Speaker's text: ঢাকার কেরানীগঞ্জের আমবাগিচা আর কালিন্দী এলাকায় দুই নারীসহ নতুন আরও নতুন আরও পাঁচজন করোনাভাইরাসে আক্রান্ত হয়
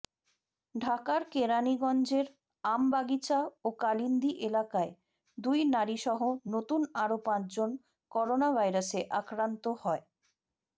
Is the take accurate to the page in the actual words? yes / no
no